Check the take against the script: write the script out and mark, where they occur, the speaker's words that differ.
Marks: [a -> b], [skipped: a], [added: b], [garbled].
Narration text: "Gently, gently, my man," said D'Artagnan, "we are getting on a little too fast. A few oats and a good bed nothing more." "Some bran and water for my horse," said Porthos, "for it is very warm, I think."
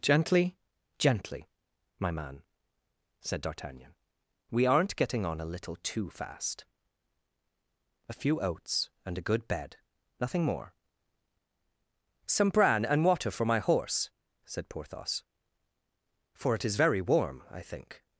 "Gently, gently, my man," said D'Artagnan, "we [are -> aren't] getting on a little too fast. A few oats and a good bed nothing more." "Some bran and water for my horse," said Porthos, "for it is very warm, I think."